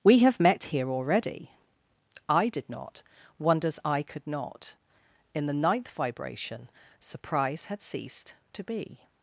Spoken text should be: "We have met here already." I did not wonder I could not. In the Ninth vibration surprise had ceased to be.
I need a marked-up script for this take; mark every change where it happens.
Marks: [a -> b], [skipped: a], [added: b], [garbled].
"We have met here already." I did not [wonder -> wonders] I could not. In the Ninth vibration surprise had ceased to be.